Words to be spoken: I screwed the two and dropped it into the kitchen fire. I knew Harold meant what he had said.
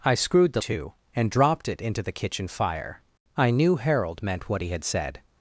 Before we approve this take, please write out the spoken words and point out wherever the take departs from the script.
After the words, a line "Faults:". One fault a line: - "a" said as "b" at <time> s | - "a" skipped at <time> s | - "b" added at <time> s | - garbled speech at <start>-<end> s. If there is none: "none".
I screwed the two and dropped it into the kitchen fire. I knew Harold meant what he had said.
Faults:
none